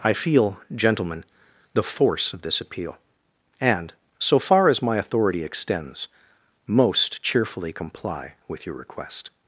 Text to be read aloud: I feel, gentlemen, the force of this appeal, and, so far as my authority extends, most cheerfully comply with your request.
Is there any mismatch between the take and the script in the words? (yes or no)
no